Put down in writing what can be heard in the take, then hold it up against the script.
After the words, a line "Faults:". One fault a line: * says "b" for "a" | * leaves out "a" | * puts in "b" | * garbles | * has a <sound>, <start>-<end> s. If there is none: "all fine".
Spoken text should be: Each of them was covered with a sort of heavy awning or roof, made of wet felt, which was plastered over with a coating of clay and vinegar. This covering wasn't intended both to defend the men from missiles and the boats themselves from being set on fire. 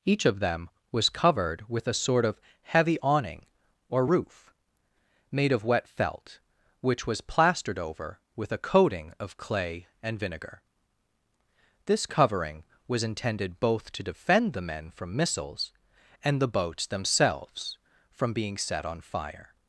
Each of them was covered with a sort of heavy awning or roof, made of wet felt, which was plastered over with a coating of clay and vinegar. This covering was intended both to defend the men from missiles and the boats themselves from being set on fire.
Faults:
* says "was" for "wasn't"